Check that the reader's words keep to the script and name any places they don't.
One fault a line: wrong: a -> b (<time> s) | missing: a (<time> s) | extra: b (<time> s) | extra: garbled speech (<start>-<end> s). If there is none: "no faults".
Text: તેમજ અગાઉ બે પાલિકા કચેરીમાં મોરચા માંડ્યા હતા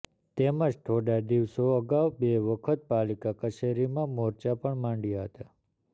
extra: થોડા દિવસો (0.8 s)
extra: વખત (2.4 s)
extra: પણ (4.6 s)